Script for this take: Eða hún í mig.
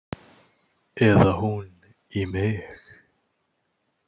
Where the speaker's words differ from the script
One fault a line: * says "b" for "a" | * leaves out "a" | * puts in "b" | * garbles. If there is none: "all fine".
all fine